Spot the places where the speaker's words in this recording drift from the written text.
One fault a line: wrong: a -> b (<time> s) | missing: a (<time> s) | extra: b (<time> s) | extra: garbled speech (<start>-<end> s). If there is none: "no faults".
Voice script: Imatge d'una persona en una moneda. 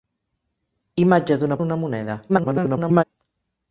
missing: persona (1.6 s)
extra: garbled speech (2.3-3.0 s)